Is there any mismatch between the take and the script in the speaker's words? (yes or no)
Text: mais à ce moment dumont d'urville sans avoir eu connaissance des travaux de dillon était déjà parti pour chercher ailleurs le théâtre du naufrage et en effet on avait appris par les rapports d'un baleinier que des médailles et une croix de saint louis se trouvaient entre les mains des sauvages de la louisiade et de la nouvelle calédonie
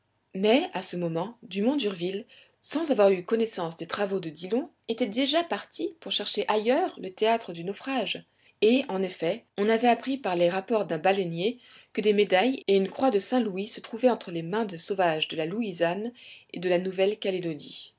no